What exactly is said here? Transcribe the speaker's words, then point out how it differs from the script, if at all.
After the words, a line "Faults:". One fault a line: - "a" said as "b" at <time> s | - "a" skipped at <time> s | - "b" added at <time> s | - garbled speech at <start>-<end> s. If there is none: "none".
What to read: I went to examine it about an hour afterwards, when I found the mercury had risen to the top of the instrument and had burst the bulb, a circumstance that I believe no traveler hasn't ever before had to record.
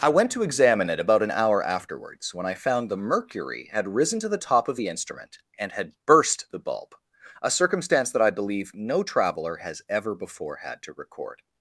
I went to examine it about an hour afterwards, when I found the mercury had risen to the top of the instrument and had burst the bulb, a circumstance that I believe no traveler has ever before had to record.
Faults:
- "hasn't" said as "has" at 9.6 s